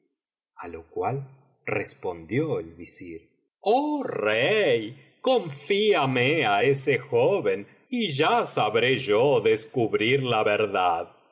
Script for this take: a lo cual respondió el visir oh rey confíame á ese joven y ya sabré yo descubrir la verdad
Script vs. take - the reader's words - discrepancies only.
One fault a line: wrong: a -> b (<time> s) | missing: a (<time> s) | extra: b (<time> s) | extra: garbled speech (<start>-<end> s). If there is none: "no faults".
no faults